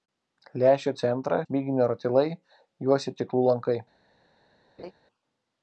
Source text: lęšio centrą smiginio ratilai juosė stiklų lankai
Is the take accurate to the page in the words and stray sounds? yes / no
no